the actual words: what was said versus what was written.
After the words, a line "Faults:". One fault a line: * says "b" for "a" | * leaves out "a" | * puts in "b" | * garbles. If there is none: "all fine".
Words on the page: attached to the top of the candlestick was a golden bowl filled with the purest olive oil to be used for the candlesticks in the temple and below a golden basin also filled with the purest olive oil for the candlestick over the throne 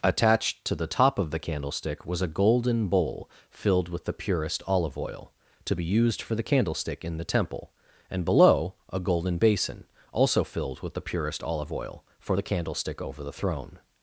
attached to the top of the candlestick was a golden bowl filled with the purest olive oil to be used for the candlestick in the temple and below a golden basin also filled with the purest olive oil for the candlestick over the throne
Faults:
* says "candlestick" for "candlesticks"